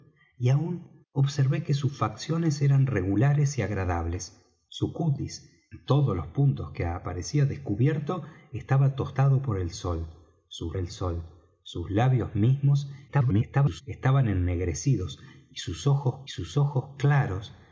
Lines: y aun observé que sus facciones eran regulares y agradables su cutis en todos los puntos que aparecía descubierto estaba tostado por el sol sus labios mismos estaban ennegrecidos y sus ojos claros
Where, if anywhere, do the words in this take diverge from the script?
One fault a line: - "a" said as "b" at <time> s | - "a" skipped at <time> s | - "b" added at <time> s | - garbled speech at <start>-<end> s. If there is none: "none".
- "el sol sus" added at 10.8 s
- garbled speech at 13.1-13.8 s
- "sus ojos" added at 16.3 s